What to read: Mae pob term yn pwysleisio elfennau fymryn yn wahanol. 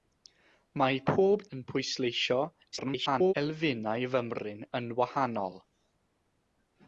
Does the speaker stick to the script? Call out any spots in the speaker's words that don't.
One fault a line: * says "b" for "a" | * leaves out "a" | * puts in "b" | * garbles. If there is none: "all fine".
* leaves out "term"
* garbles